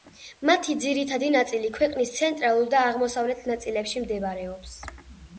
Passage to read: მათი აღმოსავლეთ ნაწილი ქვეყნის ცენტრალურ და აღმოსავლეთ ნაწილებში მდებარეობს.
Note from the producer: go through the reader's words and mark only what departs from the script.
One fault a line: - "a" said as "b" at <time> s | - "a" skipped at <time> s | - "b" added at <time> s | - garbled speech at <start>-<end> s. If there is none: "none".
- "აღმოსავლეთ" said as "ძირითადი" at 0.8 s